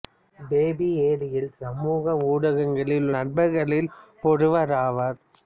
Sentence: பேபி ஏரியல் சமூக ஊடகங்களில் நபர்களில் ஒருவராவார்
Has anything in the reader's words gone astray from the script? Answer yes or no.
no